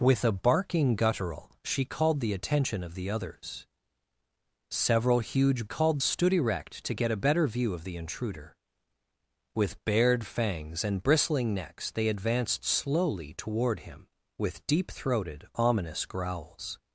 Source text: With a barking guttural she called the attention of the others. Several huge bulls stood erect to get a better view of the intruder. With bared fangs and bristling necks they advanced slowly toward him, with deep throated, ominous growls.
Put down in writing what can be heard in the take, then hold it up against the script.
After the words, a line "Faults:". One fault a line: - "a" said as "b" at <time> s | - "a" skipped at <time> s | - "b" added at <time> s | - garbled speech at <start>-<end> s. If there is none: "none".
With a barking guttural she called the attention of the others. Several huge called stood erect to get a better view of the intruder. With bared fangs and bristling necks they advanced slowly toward him, with deep throated, ominous growls.
Faults:
- "bulls" said as "called" at 5.6 s